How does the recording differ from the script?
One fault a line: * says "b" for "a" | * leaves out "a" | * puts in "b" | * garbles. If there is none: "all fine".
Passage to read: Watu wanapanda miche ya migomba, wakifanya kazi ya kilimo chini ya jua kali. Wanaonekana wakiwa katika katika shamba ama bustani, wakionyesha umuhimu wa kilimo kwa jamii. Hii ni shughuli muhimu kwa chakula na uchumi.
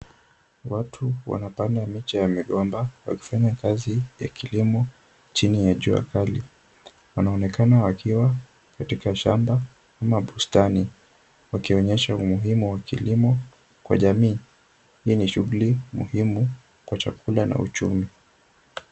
* leaves out "katika"